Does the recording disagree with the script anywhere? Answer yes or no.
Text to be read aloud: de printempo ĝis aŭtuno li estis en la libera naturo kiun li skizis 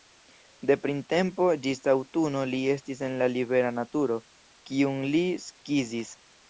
no